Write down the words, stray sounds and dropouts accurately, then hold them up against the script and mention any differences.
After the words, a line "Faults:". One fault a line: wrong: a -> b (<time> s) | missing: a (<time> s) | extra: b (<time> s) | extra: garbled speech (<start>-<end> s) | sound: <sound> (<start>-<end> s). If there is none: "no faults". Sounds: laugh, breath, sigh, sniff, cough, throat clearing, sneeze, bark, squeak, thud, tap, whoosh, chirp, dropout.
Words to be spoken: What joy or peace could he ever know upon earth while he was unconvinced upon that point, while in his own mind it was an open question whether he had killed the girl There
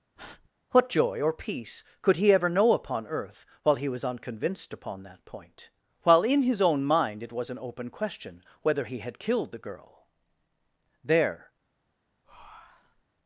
What joy or peace could he ever know upon earth while he was unconvinced upon that point, while in his own mind it was an open question whether he had killed the girl There
Faults:
sound: breath (0.2-0.5 s)
sound: breath (12.2-13.0 s)